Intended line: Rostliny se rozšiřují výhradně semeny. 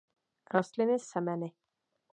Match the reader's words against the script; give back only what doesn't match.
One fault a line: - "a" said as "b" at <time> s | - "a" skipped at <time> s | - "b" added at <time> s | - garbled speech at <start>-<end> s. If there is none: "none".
- "se rozšiřují výhradně" skipped at 1.0 s